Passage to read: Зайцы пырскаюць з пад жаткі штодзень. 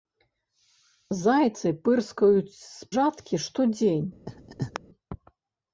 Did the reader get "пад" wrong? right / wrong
wrong